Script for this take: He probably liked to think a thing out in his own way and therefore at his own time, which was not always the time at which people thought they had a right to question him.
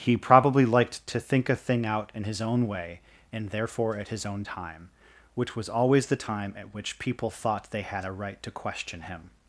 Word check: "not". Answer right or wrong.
wrong